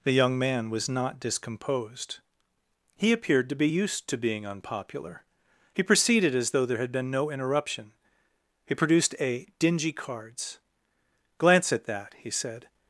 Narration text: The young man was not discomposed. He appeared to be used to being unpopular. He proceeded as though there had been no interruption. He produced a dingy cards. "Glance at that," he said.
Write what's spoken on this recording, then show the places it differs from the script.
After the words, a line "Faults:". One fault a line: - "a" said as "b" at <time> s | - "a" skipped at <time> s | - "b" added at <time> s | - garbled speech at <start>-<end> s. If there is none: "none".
The young man was not discomposed. He appeared to be used to being unpopular. He proceeded as though there had been no interruption. He produced a dingy cards. "Glance at that," he said.
Faults:
none